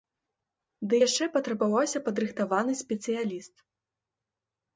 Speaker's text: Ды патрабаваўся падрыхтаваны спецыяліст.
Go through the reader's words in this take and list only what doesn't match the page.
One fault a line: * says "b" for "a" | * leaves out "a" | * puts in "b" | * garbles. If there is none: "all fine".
* puts in "яшчэ"